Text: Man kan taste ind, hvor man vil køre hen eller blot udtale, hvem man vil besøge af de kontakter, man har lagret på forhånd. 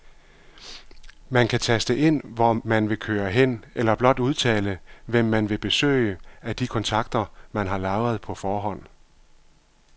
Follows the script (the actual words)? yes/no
yes